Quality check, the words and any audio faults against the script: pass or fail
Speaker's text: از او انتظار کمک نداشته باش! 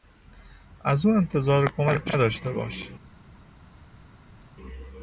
pass